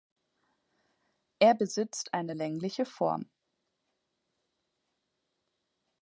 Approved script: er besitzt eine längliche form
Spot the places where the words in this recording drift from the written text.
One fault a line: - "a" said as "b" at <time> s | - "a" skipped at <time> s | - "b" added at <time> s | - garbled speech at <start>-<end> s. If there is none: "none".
none